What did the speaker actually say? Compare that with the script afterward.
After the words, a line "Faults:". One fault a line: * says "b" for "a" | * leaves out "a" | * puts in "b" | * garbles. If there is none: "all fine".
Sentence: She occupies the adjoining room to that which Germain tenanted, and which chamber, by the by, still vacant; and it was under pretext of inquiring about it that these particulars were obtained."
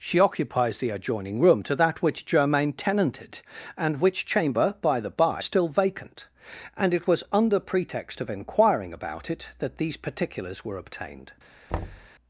She occupies the adjoining room to that which Germain tenanted, and which chamber, by the by, still vacant; and it was under pretext of inquiring about it that these particulars were obtained."
Faults:
all fine